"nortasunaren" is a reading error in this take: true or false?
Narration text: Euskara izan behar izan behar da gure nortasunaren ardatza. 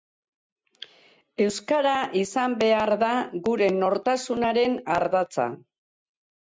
false